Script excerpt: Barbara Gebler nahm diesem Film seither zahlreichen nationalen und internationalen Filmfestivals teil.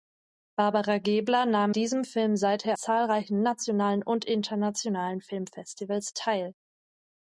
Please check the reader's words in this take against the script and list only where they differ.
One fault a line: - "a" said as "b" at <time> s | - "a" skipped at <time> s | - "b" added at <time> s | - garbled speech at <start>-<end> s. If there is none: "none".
none